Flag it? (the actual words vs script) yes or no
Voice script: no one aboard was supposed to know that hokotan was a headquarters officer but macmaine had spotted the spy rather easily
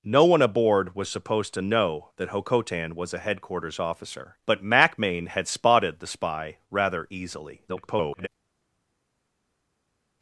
yes